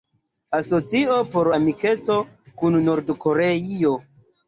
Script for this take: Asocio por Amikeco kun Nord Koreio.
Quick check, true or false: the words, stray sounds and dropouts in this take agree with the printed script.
true